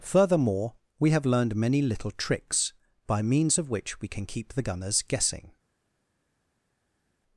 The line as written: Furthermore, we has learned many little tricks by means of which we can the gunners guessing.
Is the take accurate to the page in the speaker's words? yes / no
no